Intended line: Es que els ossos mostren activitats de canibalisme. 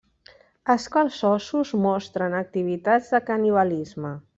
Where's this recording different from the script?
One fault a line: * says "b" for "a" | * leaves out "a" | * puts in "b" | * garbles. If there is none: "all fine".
all fine